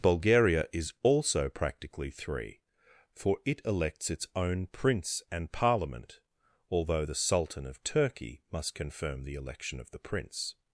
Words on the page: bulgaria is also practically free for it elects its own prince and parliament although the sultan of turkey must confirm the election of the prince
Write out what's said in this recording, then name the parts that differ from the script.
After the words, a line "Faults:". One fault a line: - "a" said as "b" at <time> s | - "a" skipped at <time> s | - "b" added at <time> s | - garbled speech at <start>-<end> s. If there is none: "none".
bulgaria is also practically three for it elects its own prince and parliament although the sultan of turkey must confirm the election of the prince
Faults:
- "free" said as "three" at 2.1 s